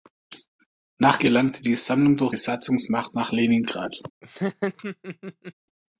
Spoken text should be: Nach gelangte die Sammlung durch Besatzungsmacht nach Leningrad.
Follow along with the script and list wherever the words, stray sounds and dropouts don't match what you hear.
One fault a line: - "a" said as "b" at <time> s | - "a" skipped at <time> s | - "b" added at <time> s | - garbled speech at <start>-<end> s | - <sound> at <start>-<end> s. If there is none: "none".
- laugh at 4.2-5.5 s